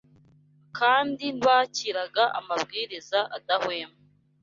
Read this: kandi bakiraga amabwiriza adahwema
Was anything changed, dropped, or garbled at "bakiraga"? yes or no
no